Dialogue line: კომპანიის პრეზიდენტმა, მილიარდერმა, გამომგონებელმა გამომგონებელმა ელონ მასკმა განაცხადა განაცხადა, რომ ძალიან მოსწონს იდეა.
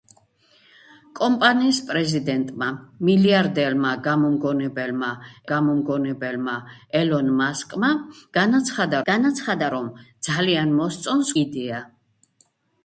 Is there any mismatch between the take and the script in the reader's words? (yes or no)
no